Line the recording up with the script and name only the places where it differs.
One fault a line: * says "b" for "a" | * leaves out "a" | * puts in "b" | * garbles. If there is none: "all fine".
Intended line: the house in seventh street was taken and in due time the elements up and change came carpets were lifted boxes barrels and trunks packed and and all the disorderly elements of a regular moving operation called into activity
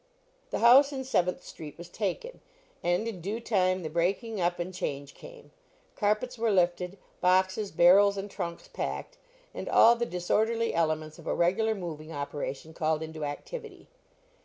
* says "breaking" for "elements"
* leaves out "and"